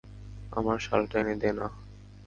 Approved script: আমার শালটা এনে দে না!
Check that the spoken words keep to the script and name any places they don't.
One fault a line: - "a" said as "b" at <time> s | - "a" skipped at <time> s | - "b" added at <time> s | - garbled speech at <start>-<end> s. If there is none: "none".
none